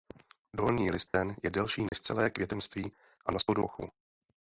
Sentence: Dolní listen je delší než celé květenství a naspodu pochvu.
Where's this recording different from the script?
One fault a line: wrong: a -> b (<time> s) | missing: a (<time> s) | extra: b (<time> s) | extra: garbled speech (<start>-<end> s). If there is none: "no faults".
no faults